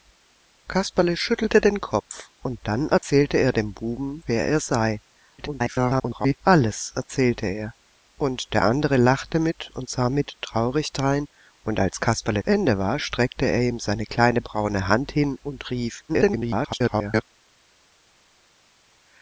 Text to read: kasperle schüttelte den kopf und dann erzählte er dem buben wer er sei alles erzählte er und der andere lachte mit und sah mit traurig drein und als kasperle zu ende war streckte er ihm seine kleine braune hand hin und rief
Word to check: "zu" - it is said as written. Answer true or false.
false